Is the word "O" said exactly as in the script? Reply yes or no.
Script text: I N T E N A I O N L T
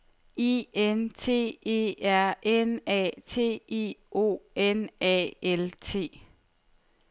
yes